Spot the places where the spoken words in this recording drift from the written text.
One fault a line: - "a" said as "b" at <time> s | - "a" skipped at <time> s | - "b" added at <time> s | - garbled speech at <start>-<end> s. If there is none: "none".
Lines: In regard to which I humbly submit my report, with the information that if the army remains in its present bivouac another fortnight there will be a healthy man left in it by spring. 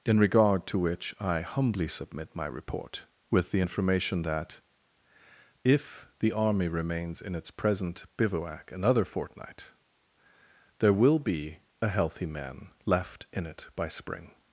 none